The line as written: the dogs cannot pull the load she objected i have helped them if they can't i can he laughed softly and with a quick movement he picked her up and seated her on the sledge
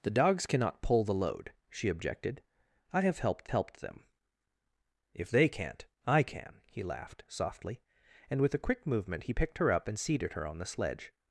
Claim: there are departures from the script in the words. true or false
true